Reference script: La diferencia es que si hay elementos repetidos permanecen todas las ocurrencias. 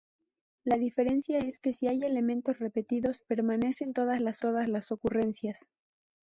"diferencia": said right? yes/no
yes